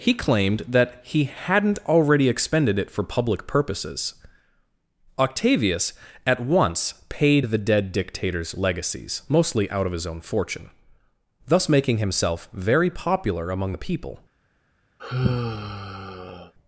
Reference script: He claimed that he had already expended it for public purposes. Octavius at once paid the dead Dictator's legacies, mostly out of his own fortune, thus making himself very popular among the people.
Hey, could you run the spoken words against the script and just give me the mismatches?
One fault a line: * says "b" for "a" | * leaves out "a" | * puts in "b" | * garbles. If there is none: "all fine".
* says "hadn't" for "had"